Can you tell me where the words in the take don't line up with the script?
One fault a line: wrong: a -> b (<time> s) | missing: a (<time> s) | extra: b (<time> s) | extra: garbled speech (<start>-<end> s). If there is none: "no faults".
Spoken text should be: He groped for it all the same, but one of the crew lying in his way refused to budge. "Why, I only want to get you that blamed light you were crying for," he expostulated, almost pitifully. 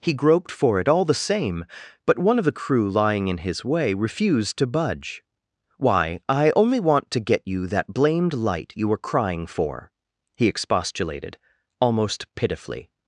no faults